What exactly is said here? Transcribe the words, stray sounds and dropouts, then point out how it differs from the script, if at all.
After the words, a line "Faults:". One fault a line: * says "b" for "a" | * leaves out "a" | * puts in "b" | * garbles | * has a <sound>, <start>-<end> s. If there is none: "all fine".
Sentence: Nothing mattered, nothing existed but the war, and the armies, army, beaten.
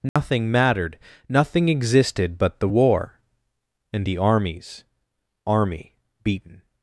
Nothing mattered, nothing existed but the war, and the armies, army, beaten.
Faults:
* has a dropout, 0.1-0.2 s